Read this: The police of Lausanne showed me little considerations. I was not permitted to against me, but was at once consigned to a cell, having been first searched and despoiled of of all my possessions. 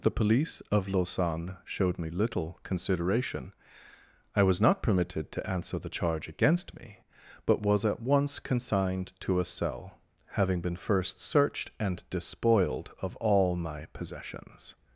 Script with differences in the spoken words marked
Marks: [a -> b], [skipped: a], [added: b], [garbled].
The police of Lausanne showed me little [considerations. -> consideration] I was not permitted to [added: answer the charge] against me, but was at once consigned to a cell, having been first searched and despoiled of [skipped: of] all my possessions.